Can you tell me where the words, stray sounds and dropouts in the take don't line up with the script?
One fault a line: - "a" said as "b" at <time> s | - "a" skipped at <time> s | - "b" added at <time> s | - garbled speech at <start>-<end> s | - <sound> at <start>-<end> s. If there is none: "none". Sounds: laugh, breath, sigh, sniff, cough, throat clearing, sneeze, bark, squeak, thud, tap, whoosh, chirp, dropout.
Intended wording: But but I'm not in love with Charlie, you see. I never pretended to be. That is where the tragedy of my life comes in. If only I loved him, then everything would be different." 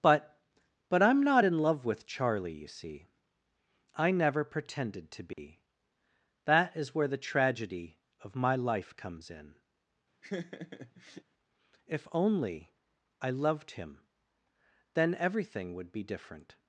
- dropout at 5.3-5.4 s
- laugh at 10.2-11.2 s